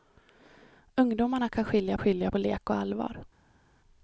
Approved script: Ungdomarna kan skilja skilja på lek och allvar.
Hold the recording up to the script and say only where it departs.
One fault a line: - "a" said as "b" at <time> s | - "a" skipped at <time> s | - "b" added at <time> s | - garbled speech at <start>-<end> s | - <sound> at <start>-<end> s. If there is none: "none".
none